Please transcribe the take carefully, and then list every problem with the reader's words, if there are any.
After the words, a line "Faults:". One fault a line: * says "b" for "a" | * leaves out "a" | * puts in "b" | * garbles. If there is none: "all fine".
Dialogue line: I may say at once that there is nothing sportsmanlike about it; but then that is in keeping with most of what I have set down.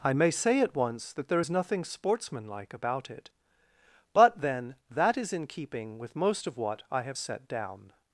I may say at once that there is nothing sportsmanlike about it; but then that is in keeping with most of what I have set down.
Faults:
all fine